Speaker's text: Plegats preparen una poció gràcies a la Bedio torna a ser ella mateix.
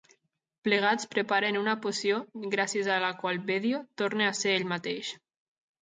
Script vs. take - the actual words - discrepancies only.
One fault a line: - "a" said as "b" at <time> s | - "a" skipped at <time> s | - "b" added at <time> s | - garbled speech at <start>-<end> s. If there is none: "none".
- "qual" added at 3.2 s
- "ella" said as "ell" at 4.6 s